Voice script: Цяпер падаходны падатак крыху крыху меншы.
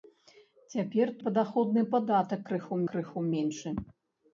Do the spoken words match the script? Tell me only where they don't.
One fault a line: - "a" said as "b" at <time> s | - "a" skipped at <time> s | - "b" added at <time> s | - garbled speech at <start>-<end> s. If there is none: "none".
none